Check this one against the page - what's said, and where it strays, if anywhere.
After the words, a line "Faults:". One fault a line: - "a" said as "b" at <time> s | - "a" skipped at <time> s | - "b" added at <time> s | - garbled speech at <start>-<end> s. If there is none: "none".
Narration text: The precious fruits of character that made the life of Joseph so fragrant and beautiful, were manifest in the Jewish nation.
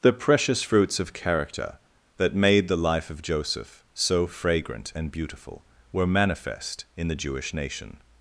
The precious fruits of character that made the life of Joseph so fragrant and beautiful, were manifest in the Jewish nation.
Faults:
none